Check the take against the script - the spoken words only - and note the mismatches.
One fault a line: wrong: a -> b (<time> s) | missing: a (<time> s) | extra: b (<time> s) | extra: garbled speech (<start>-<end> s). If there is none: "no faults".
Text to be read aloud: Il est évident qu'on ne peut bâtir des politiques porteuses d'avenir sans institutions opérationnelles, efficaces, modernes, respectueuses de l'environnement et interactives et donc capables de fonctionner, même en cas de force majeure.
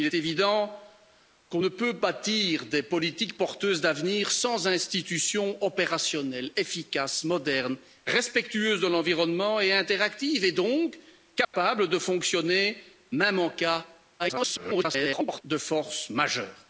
missing: est (0.1 s)
extra: garbled speech (14.2-15.4 s)